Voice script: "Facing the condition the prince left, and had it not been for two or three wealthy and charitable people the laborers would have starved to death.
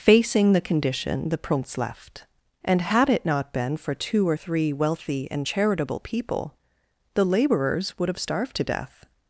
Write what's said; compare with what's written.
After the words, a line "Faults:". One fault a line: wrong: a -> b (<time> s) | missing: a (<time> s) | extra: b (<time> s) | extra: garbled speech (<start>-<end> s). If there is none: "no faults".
"Facing the condition the prince left, and had it not been for two or three wealthy and charitable people the laborers would have starved to death.
Faults:
no faults